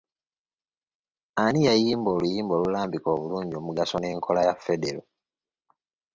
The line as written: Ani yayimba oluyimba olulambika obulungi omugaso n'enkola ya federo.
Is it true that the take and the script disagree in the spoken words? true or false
false